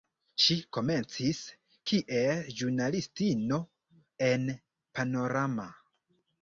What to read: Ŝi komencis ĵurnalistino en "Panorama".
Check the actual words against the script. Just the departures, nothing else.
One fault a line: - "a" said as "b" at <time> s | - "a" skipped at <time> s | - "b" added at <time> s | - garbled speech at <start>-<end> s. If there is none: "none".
- "kiel" added at 1.9 s